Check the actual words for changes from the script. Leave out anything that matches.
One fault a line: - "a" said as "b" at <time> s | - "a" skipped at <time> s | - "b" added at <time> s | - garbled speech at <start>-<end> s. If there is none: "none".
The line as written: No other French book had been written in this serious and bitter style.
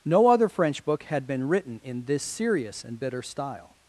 none